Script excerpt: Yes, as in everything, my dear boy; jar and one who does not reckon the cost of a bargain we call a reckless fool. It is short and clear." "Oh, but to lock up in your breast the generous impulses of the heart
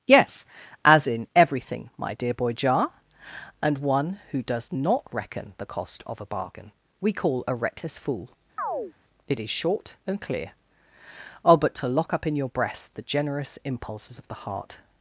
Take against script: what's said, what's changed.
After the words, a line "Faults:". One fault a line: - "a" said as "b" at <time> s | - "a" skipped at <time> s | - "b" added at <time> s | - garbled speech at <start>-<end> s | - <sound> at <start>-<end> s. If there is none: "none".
Yes, as in everything, my dear boy; jar and one who does not reckon the cost of a bargain we call a reckless fool. It is short and clear." "Oh, but to lock up in your breast the generous impulses of the heart
Faults:
- chirp at 8.6-8.9 s